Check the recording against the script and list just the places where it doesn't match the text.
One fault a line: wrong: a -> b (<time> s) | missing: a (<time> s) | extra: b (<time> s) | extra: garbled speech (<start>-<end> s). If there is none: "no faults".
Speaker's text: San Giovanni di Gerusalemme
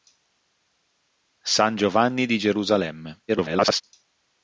extra: garbled speech (3.3-3.8 s)